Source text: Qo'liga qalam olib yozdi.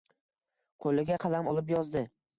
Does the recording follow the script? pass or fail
pass